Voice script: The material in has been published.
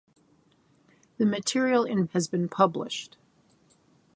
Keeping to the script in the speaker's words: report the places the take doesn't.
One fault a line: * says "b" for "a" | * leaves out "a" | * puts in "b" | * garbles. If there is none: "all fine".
all fine